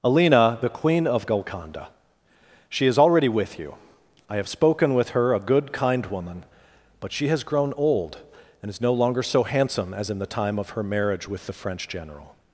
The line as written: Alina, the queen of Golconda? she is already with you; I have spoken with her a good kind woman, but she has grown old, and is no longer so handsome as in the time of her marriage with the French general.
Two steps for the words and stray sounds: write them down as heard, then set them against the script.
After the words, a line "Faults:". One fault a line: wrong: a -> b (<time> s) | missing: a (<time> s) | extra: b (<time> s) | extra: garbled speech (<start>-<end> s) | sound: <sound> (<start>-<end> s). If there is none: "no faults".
Alina, the queen of Golconda? she is already with you; I have spoken with her a good kind woman, but she has grown old, and is no longer so handsome as in the time of her marriage with the French general.
Faults:
no faults